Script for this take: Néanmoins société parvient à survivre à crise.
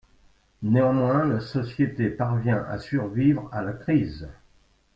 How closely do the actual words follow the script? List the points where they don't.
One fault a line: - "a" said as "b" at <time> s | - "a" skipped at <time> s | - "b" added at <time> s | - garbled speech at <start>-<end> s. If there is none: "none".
- "la" added at 1.2 s
- "la" added at 3.6 s